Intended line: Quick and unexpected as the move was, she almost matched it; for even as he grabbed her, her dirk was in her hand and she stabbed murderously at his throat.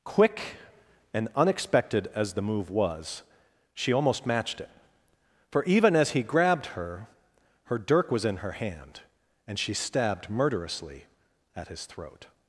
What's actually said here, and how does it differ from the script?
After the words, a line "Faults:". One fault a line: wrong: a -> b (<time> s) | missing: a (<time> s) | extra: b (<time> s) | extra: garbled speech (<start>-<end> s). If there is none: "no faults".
Quick and unexpected as the move was, she almost matched it; for even as he grabbed her, her dirk was in her hand and she stabbed murderously at his throat.
Faults:
no faults